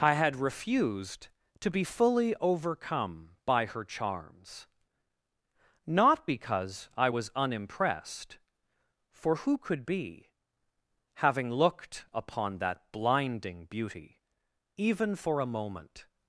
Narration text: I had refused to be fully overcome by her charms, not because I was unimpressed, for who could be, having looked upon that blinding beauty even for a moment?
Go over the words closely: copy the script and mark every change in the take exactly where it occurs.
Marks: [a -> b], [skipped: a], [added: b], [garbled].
I had refused to be fully overcome by her charms, not because I was unimpressed, for who could be, having looked upon that blinding beauty even for a moment?